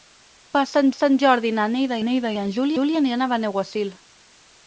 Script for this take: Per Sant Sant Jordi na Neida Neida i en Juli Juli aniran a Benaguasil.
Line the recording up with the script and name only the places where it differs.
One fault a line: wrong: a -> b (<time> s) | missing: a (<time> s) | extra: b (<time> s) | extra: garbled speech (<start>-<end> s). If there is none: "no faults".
no faults